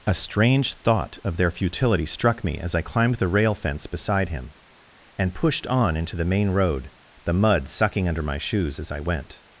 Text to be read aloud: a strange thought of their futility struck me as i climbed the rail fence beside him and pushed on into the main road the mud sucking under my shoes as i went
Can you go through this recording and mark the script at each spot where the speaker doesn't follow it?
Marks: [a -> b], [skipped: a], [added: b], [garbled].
a strange thought of their futility struck me as i climbed the rail fence beside him and pushed on into the main road the mud sucking under my shoes as i went